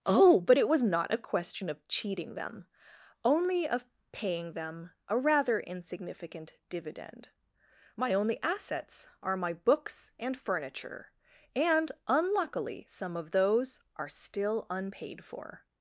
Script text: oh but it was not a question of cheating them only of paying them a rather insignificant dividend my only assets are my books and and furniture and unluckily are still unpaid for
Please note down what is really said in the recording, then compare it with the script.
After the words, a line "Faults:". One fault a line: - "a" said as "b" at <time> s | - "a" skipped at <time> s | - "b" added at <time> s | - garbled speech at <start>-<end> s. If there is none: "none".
oh but it was not a question of cheating them only of paying them a rather insignificant dividend my only assets are my books and furniture and unluckily some of those are still unpaid for
Faults:
- "and" skipped at 10.4 s
- "some of those" added at 12.8 s